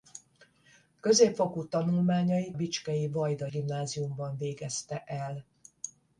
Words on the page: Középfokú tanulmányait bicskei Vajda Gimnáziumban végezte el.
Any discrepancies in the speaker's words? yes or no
no